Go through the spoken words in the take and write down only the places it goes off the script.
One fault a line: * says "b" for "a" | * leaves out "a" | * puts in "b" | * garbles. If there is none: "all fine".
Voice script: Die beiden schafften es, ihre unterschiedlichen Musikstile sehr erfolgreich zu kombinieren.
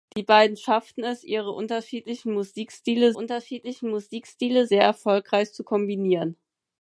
* puts in "unterschiedlichen Musikstile"